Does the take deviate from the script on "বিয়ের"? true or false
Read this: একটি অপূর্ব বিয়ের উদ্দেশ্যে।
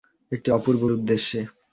true